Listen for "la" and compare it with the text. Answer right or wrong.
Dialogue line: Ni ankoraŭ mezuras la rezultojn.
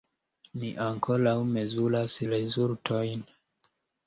wrong